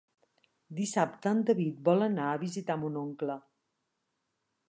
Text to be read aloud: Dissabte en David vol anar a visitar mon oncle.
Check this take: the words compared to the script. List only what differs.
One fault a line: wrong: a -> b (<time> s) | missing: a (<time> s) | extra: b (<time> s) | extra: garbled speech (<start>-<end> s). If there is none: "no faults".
no faults